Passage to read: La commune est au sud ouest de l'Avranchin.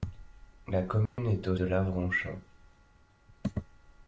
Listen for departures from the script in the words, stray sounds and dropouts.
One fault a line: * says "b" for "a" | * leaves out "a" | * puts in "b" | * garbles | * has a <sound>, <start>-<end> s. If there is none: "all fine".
* has a dropout, 1.1-1.2 s
* leaves out "sud ouest"